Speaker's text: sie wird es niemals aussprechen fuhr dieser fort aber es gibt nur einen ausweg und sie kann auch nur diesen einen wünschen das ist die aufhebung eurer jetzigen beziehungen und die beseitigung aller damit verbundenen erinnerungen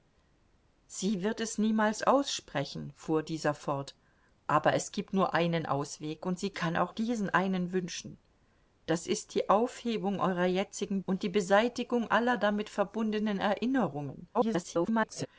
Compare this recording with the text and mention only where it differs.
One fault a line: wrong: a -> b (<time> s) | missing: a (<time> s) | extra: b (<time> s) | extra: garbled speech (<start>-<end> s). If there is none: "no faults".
missing: nur (6.9 s)
missing: beziehungen (11.0 s)
extra: garbled speech (14.3-15.3 s)